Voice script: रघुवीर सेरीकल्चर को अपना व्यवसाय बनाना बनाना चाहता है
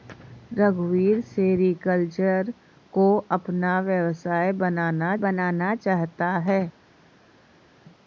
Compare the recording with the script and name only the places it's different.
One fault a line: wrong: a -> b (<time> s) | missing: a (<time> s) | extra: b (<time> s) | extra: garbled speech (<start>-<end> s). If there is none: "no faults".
no faults